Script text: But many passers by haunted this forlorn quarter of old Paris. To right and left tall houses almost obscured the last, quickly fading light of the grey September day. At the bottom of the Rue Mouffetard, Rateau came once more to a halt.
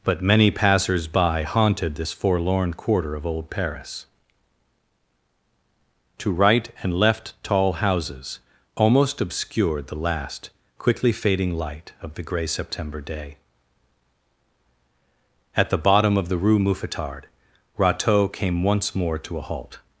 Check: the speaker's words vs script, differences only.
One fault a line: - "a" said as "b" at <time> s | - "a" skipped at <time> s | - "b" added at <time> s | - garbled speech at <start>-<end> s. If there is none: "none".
none